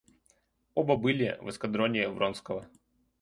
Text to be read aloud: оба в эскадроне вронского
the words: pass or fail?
fail